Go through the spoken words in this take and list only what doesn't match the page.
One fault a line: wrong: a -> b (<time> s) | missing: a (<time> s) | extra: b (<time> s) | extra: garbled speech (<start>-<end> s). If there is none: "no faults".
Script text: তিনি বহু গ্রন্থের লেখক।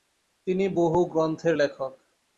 no faults